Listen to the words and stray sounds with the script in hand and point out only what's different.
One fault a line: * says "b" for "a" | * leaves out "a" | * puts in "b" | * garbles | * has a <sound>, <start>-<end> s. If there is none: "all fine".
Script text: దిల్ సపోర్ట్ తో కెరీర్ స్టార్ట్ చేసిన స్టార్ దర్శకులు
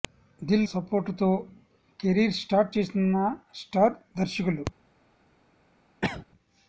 * has a cough, 6.0-6.3 s